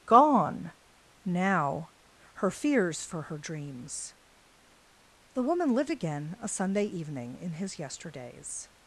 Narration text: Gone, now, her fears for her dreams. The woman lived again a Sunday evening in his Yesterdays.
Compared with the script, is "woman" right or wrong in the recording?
right